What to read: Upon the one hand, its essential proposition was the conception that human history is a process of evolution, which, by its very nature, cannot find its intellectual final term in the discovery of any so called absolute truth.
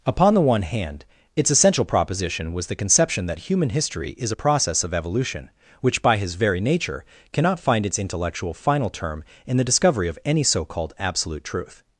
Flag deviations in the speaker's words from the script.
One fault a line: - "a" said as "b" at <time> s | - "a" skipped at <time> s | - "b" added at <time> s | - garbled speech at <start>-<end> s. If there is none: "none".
- "its" said as "his" at 6.2 s